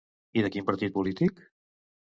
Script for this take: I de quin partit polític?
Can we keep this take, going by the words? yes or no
yes